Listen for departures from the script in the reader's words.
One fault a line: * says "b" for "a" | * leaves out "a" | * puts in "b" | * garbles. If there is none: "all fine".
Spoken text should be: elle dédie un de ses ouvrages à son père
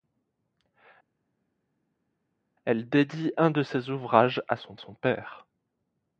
* puts in "son"